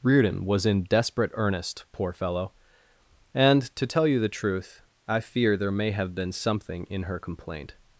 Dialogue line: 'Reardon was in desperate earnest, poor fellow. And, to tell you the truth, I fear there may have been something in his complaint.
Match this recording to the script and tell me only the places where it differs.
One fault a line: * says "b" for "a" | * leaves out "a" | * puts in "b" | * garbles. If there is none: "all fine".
* says "her" for "his"